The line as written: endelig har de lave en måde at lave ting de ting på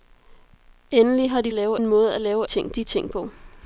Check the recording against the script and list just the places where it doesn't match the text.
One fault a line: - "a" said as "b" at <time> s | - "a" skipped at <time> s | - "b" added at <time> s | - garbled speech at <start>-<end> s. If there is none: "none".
none